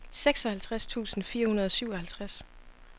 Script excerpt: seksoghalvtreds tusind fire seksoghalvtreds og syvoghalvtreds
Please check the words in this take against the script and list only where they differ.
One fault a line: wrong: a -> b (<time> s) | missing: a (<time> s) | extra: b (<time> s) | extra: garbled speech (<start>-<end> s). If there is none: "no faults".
wrong: seksoghalvtreds -> hundrede (1.5 s)